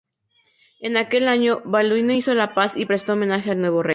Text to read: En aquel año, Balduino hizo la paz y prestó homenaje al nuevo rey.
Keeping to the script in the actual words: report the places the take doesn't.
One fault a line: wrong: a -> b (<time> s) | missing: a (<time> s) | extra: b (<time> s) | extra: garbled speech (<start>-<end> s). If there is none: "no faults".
no faults